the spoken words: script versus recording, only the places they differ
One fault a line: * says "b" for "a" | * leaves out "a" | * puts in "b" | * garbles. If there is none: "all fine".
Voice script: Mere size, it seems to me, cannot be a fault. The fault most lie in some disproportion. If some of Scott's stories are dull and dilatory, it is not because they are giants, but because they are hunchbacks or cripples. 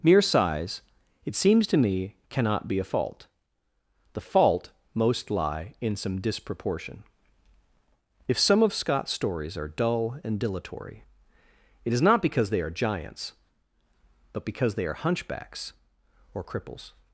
all fine